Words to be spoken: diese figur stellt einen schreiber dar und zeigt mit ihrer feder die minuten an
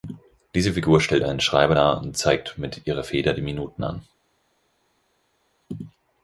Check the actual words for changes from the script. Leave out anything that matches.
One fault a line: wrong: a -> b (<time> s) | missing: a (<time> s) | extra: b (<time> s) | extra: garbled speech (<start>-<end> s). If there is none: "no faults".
no faults